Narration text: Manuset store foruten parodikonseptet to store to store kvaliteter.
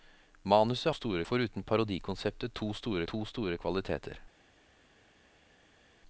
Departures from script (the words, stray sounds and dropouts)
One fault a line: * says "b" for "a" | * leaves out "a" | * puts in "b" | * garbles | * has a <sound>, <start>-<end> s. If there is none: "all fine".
all fine